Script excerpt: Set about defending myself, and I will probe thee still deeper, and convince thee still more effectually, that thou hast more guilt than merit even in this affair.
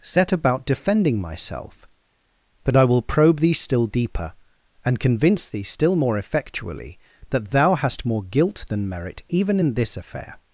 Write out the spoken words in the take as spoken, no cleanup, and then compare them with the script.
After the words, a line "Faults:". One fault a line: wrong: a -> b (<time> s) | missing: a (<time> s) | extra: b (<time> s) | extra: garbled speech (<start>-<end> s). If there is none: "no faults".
Set about defending myself, but I will probe thee still deeper, and convince thee still more effectually, that thou hast more guilt than merit even in this affair.
Faults:
wrong: and -> but (2.6 s)